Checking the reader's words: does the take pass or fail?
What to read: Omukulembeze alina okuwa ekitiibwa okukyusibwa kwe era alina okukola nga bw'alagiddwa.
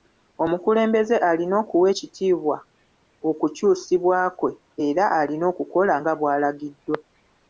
pass